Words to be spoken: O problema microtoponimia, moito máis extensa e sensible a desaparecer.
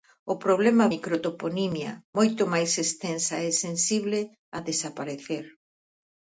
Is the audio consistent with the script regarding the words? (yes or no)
yes